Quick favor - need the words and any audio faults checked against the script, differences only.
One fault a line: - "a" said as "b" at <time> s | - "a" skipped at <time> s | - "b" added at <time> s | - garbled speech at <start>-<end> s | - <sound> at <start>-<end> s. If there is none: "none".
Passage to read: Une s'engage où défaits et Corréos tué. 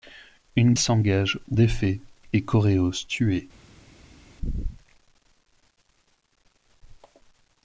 none